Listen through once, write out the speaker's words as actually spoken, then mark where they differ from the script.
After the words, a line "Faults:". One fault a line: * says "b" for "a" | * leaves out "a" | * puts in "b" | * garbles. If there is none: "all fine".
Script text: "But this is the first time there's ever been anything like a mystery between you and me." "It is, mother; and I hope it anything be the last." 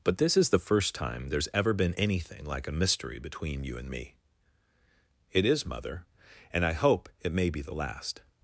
"But this is the first time there's ever been anything like a mystery between you and me." "It is, mother; and I hope it may be the last."
Faults:
* says "may" for "anything"